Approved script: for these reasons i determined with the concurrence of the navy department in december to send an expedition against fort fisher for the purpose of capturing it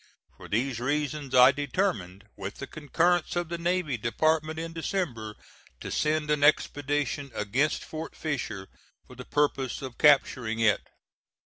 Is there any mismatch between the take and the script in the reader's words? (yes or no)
no